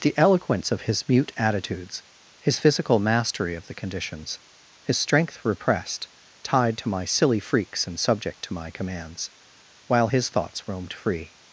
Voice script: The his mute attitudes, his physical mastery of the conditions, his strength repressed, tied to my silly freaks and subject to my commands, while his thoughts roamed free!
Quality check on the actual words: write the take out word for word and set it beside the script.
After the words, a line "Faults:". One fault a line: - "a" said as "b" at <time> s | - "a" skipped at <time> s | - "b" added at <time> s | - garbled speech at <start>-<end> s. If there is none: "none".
The eloquence of his mute attitudes, his physical mastery of the conditions, his strength repressed, tied to my silly freaks and subject to my commands, while his thoughts roamed free!
Faults:
- "eloquence of" added at 0.2 s